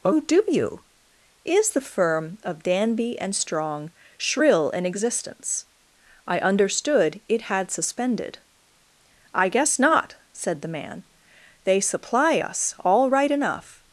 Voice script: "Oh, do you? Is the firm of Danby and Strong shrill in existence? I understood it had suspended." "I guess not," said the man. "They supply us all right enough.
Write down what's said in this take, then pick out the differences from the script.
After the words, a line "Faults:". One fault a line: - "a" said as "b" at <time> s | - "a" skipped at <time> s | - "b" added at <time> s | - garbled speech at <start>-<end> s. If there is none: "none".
"Oh, do you? Is the firm of Danby and Strong shrill in existence? I understood it had suspended." "I guess not," said the man. "They supply us all right enough.
Faults:
none